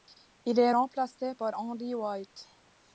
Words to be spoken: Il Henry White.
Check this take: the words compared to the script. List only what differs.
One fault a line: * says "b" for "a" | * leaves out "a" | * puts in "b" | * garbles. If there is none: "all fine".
* puts in "est remplacé par"